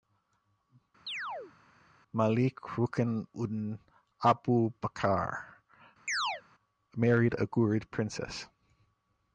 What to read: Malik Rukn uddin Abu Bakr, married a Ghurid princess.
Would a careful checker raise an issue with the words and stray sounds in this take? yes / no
yes